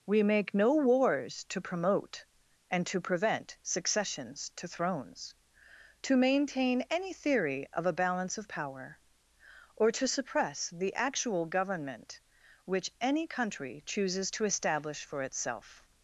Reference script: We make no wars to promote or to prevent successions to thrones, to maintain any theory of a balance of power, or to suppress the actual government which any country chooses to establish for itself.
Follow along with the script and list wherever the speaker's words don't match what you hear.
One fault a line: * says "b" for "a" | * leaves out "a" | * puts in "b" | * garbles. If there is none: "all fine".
* says "and" for "or"